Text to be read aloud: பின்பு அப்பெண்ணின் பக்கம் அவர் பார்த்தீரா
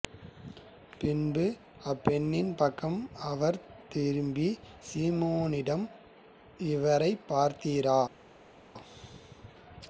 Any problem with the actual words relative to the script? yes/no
yes